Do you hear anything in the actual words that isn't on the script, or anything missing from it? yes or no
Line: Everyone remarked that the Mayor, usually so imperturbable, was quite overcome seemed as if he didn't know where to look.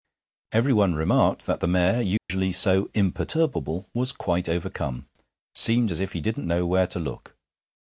no